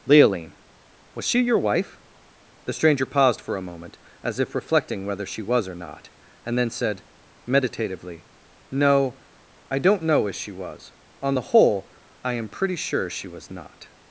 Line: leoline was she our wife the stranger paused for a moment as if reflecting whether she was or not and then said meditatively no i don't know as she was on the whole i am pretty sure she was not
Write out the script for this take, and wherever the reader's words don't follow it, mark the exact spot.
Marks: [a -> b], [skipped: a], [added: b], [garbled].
leoline was she [our -> your] wife the stranger paused for a moment as if reflecting whether she was or not and then said meditatively no i don't know as she was on the whole i am pretty sure she was not